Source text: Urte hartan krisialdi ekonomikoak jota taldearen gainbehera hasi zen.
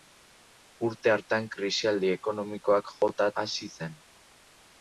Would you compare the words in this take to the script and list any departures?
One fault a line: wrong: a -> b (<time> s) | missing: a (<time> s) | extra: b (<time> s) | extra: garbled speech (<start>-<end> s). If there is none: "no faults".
missing: taldearen gainbehera (3.3 s)